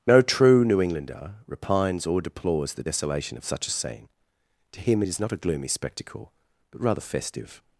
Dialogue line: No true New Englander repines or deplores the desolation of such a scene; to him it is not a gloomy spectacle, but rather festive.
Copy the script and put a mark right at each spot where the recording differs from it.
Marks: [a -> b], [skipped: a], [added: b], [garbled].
No true New Englander repines or deplores the desolation of such a scene; to him it is not a gloomy spectacle, but rather festive.